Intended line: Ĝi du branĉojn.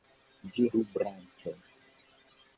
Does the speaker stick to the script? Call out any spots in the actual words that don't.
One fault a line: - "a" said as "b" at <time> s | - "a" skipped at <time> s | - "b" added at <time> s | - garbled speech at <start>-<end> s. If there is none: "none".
none